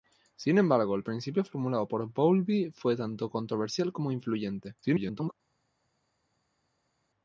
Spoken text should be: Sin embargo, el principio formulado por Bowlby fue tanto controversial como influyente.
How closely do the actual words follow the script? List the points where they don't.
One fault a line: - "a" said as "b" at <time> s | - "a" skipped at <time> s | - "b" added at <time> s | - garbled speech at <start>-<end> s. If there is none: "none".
- garbled speech at 4.8-5.3 s